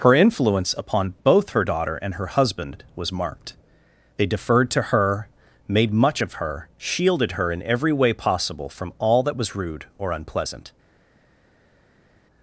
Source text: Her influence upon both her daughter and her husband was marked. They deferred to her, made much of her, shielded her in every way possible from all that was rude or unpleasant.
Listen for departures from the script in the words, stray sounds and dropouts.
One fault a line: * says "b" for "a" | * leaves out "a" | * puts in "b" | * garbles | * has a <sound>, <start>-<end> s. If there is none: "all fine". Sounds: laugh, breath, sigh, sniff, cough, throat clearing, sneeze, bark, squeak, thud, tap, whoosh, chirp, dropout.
all fine